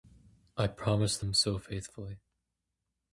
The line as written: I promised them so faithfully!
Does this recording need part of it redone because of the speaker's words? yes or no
no